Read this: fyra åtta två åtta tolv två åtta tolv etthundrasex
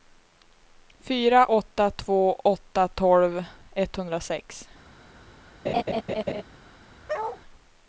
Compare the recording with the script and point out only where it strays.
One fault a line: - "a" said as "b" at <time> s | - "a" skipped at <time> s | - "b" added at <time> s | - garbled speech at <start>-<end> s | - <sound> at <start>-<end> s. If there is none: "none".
- "två åtta tolv" skipped at 3.4 s
- laugh at 5.6-6.4 s
- bark at 7.1-7.4 s